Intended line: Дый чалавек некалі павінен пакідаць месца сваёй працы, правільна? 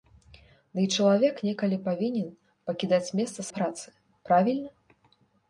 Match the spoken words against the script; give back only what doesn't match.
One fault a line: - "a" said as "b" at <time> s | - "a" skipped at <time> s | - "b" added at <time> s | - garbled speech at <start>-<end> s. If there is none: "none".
- "сваёй" skipped at 3.4 s